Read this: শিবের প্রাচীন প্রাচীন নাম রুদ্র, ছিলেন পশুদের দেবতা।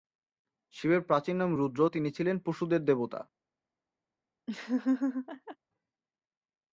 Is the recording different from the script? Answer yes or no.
yes